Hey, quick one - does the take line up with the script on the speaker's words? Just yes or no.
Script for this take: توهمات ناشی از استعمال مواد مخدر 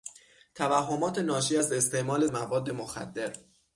yes